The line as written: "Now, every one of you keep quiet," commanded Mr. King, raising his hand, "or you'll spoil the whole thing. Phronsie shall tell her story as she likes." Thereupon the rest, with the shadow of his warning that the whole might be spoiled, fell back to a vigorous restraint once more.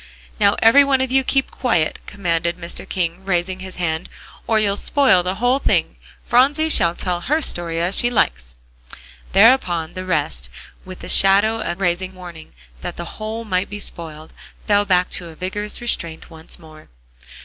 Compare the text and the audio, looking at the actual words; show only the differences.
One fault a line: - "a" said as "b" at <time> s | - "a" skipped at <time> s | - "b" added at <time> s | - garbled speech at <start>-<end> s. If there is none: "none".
- "his" said as "raising" at 11.8 s